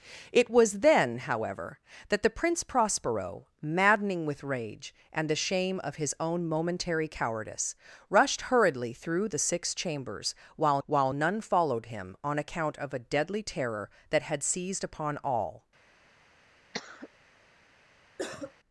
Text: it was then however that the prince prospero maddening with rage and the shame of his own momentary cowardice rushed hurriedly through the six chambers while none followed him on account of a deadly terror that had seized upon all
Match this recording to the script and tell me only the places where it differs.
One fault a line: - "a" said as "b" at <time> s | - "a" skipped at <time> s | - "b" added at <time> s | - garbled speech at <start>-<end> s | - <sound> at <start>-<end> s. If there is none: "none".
- "while" added at 10.8 s
- cough at 16.7-17.1 s
- cough at 18.2-18.5 s